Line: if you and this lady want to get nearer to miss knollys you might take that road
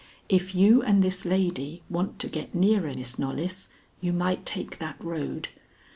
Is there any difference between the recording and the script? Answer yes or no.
yes